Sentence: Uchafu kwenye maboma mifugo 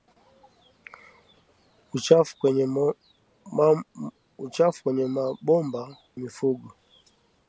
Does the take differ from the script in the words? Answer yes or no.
no